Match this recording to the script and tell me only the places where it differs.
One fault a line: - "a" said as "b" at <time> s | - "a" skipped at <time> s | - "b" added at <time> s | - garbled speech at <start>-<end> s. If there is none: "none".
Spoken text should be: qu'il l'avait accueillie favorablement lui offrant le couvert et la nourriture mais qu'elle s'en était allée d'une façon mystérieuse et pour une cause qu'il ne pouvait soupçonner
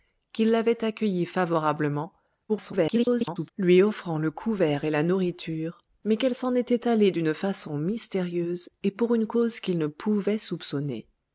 - garbled speech at 2.5-3.5 s